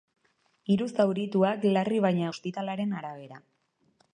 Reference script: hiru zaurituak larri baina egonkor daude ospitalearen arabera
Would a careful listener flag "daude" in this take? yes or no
yes